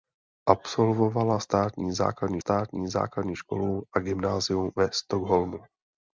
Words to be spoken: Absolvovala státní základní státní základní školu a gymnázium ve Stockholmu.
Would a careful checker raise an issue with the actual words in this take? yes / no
no